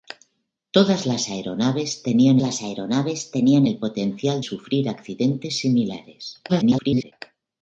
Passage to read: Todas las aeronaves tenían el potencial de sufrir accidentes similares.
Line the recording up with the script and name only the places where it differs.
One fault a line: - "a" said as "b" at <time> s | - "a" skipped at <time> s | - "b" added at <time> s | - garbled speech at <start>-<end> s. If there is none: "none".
- "las aeronaves tenían" added at 2.4 s
- "de" skipped at 4.4 s
- garbled speech at 6.5-7.1 s